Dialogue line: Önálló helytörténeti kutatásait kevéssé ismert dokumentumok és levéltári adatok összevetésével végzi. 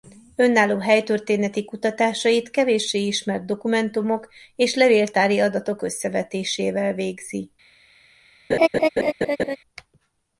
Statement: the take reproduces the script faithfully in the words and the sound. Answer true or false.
false